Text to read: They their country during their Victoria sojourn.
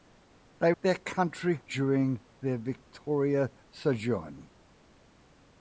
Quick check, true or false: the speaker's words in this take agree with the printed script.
true